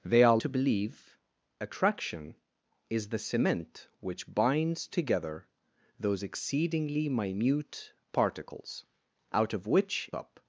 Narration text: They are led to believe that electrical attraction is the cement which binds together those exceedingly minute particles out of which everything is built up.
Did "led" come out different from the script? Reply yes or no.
yes